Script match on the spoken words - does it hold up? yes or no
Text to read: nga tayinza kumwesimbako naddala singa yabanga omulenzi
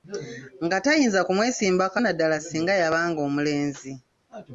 yes